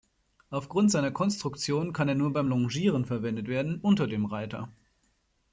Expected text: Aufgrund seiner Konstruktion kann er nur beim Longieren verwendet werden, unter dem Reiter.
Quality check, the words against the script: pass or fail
pass